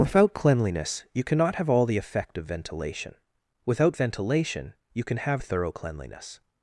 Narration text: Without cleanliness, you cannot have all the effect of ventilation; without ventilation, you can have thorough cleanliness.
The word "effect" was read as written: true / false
true